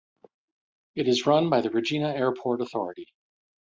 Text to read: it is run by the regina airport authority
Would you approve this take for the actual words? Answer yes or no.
yes